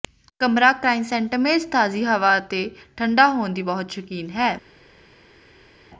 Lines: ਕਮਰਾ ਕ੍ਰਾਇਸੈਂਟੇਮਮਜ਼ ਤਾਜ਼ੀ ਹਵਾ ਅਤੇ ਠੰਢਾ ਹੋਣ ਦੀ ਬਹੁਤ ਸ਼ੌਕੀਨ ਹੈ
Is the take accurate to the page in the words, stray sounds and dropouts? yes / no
yes